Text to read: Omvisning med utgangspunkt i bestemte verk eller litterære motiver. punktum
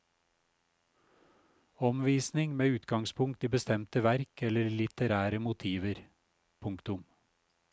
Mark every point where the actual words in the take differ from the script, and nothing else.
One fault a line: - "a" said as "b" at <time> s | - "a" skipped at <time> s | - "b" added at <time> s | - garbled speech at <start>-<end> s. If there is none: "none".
none